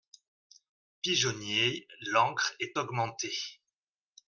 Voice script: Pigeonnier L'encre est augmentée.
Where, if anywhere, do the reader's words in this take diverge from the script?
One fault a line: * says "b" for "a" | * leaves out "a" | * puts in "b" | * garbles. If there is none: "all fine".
all fine